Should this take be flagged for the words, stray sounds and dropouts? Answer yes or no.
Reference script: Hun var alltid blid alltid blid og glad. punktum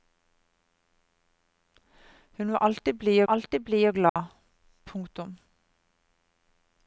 yes